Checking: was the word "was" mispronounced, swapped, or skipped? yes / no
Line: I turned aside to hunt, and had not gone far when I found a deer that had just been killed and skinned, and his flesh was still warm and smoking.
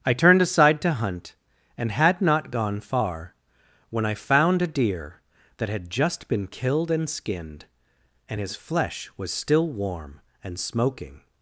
no